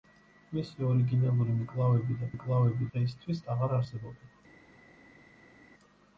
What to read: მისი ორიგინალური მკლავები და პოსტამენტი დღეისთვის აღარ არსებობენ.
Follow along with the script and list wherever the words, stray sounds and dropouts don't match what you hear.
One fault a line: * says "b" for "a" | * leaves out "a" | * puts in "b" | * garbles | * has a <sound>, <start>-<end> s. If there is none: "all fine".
* says "მკლავები" for "პოსტამენტი"